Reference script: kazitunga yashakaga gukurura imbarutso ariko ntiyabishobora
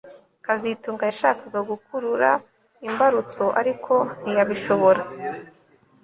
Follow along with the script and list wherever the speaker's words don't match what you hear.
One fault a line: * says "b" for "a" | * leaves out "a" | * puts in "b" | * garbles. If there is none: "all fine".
all fine